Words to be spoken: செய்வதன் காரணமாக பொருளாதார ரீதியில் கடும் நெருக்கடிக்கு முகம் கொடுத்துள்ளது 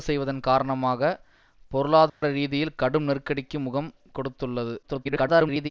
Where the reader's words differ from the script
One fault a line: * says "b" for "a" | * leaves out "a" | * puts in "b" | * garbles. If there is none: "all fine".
* garbles